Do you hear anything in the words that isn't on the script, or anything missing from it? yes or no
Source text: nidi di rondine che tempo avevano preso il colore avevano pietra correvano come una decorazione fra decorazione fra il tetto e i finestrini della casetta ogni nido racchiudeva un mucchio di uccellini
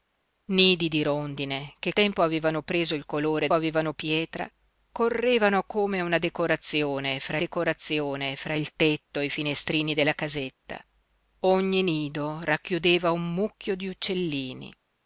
no